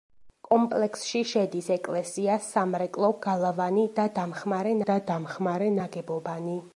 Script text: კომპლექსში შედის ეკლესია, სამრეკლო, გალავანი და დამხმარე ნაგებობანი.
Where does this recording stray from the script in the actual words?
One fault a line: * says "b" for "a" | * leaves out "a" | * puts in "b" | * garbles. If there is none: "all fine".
* puts in "და დამხმარე"